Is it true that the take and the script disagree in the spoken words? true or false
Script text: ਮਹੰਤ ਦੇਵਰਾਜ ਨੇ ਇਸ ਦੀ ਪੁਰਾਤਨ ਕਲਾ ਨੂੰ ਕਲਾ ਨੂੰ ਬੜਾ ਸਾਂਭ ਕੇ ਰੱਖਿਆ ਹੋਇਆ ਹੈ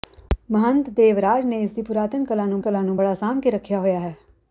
false